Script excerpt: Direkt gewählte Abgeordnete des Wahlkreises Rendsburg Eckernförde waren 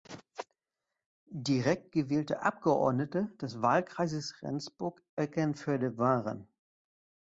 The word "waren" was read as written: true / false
true